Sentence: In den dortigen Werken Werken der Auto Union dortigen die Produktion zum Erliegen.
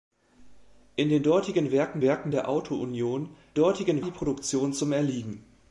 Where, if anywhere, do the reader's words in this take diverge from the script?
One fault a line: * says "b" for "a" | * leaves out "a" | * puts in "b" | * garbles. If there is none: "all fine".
all fine